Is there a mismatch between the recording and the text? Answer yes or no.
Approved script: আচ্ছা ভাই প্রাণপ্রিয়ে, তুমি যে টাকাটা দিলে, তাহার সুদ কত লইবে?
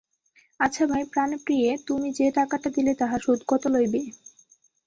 no